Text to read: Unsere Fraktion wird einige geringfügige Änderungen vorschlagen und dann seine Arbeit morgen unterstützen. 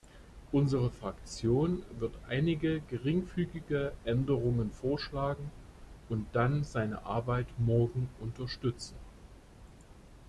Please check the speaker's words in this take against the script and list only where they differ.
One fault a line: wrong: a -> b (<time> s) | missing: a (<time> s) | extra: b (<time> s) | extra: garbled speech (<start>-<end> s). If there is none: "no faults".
no faults